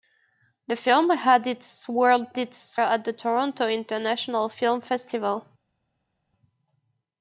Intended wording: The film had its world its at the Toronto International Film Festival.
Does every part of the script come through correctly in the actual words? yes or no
yes